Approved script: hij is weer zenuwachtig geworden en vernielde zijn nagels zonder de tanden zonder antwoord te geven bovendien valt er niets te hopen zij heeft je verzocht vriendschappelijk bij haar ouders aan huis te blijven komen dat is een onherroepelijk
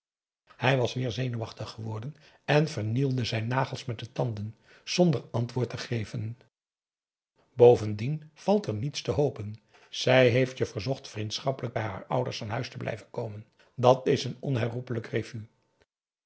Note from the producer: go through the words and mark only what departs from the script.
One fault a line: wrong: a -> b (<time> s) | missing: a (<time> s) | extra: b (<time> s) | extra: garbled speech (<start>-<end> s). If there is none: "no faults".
wrong: is -> was (0.8 s)
wrong: zonder -> met (3.9 s)